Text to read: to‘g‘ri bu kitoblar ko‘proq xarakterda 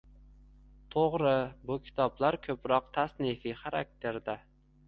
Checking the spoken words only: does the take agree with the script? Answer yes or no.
no